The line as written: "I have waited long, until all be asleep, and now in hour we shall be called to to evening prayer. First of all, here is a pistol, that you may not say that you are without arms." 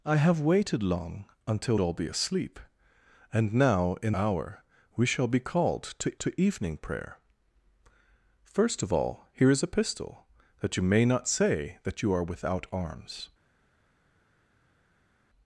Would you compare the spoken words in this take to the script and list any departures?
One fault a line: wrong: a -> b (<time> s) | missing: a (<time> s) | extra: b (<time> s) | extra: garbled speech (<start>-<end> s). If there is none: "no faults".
no faults